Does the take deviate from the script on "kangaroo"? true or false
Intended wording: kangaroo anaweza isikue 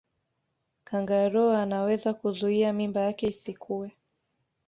false